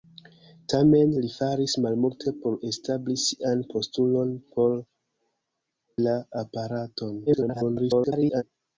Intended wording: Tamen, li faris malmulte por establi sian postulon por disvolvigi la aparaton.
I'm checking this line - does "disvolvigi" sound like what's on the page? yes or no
no